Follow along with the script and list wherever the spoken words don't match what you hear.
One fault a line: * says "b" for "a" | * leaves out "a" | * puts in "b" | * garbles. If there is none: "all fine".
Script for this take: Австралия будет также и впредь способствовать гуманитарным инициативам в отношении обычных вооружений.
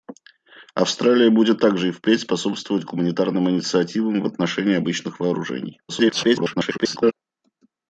* garbles